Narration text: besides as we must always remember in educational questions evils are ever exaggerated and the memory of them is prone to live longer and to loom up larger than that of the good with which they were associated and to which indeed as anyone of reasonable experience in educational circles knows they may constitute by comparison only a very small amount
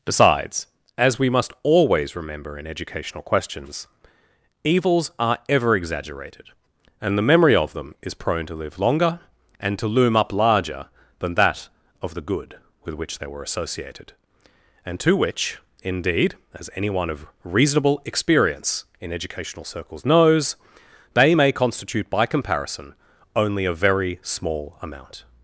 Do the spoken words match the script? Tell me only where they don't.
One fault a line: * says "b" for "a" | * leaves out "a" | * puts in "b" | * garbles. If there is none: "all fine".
all fine